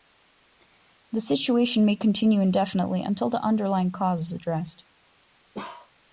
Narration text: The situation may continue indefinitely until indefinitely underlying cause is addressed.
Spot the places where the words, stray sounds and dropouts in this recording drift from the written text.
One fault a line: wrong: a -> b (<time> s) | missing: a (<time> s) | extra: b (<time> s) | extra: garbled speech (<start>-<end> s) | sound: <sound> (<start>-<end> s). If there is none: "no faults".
wrong: indefinitely -> the (3.3 s)
sound: bark (5.5-5.9 s)